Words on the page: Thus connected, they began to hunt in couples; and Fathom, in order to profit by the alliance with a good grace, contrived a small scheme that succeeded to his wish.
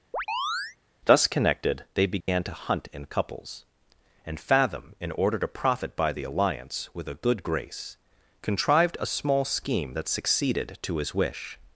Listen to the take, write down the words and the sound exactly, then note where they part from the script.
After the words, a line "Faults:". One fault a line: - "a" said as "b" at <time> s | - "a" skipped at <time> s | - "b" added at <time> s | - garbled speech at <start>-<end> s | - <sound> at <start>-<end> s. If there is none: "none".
Thus connected, they began to hunt in couples; and Fathom, in order to profit by the alliance with a good grace, contrived a small scheme that succeeded to his wish.
Faults:
- chirp at 0.1-0.8 s
- dropout at 2.2-2.3 s